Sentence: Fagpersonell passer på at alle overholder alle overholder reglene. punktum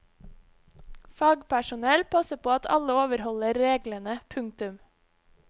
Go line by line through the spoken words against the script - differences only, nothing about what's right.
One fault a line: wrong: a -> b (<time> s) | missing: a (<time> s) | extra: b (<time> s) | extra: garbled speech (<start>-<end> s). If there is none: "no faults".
missing: alle overholder (3.6 s)